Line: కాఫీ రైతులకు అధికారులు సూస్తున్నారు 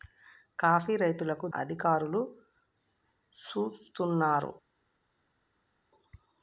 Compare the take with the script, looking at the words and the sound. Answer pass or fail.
pass